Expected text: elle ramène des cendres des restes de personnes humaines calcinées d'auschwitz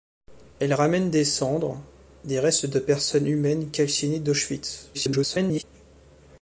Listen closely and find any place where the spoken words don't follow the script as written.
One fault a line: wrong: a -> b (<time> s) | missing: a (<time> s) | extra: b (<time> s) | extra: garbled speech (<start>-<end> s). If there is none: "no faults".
extra: garbled speech (4.9-5.6 s)